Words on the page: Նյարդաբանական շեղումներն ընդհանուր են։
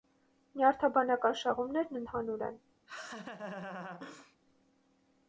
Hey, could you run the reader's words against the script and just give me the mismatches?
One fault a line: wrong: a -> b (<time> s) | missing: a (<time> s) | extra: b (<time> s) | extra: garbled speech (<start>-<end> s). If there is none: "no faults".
no faults